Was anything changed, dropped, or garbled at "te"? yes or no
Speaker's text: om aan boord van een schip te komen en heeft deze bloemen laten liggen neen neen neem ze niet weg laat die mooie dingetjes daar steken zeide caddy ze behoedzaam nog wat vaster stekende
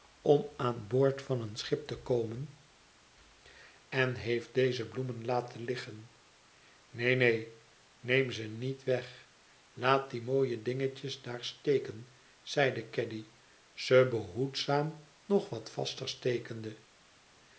no